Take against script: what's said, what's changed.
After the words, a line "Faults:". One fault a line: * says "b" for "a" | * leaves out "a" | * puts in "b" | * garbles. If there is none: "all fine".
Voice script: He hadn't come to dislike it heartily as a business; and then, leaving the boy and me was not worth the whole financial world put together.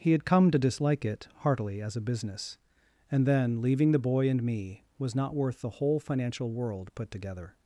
He had come to dislike it heartily as a business; and then, leaving the boy and me was not worth the whole financial world put together.
Faults:
* says "had" for "hadn't"